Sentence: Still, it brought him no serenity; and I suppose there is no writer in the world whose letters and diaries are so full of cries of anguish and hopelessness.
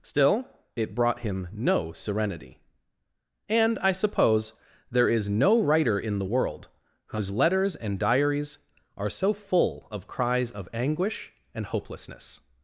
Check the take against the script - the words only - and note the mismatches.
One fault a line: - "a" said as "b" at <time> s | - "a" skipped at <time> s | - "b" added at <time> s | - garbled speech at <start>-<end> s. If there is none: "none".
none